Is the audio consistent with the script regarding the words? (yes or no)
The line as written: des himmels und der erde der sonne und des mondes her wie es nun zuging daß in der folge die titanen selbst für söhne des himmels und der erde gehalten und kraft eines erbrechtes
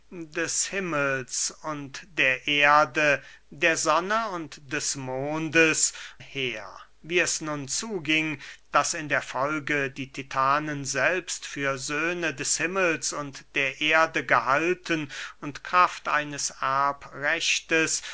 yes